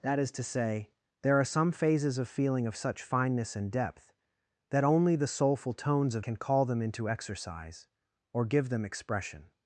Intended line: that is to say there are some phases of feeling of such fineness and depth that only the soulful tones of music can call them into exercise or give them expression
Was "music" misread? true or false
true